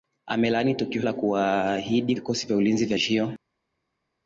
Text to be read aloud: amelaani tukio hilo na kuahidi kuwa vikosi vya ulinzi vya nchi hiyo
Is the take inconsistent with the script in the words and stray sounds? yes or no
yes